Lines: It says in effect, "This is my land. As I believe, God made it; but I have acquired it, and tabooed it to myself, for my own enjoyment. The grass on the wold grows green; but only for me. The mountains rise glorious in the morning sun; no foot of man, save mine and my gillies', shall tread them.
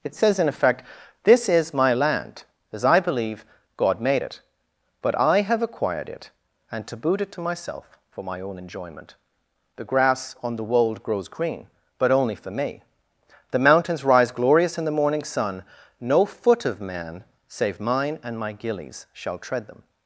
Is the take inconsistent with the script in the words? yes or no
no